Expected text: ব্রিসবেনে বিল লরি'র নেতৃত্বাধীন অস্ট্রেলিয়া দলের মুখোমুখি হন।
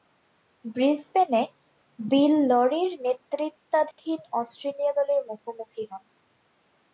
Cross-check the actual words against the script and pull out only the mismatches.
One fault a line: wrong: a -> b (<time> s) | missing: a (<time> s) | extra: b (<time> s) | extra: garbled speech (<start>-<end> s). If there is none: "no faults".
no faults